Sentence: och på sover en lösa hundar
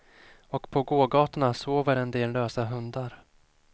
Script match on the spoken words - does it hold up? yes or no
no